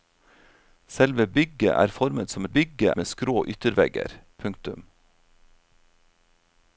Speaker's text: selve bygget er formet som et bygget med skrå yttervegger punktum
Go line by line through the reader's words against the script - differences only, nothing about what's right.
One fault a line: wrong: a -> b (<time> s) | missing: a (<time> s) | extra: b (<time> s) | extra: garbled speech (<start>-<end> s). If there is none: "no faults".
no faults